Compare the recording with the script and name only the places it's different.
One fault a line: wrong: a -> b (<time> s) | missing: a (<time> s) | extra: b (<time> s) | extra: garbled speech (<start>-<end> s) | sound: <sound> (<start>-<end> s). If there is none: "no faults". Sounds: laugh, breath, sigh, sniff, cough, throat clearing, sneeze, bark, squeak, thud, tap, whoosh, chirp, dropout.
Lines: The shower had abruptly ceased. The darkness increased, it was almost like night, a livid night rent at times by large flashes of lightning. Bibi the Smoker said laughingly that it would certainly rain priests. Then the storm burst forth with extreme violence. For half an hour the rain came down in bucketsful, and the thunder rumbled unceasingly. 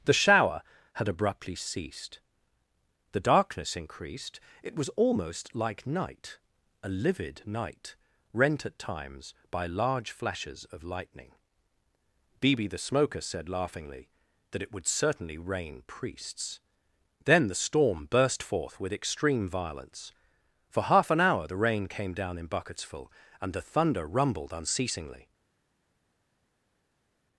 no faults